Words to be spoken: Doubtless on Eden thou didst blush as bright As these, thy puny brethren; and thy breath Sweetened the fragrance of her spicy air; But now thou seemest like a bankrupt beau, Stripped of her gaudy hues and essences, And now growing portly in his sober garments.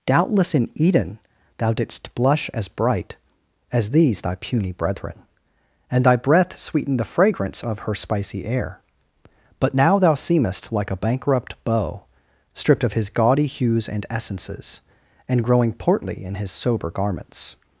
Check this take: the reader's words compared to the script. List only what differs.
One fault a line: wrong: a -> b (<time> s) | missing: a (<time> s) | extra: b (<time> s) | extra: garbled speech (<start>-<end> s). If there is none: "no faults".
wrong: on -> in (0.6 s)
wrong: her -> his (12.9 s)
missing: now (15.4 s)